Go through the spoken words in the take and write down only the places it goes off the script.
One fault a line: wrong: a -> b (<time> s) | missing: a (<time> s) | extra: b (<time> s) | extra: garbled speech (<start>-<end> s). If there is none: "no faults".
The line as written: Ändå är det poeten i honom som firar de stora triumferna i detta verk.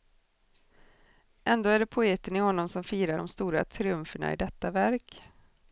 no faults